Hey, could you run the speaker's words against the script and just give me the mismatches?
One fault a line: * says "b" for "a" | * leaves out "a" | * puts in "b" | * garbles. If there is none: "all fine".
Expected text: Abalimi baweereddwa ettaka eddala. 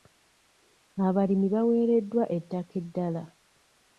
all fine